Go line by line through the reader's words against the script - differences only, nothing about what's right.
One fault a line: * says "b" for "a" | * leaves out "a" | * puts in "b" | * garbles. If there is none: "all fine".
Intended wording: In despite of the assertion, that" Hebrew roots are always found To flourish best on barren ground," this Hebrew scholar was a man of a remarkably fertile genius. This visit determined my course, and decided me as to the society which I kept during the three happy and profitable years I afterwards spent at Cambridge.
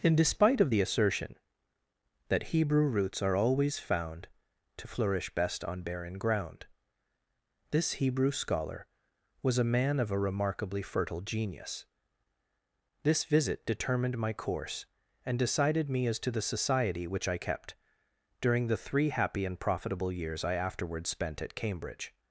all fine